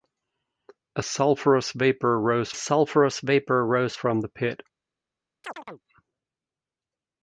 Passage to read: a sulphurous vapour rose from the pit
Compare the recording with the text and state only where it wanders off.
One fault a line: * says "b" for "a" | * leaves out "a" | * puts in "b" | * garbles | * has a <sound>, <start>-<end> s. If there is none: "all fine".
* puts in "sulphurous vapour rose"
* has a chirp, 5.4-5.8 s